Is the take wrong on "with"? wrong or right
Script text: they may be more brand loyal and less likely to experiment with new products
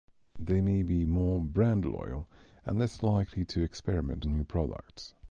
wrong